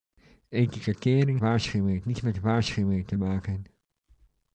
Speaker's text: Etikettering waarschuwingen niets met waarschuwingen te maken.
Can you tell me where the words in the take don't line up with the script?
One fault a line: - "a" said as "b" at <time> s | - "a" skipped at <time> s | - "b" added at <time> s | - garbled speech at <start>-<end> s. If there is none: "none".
none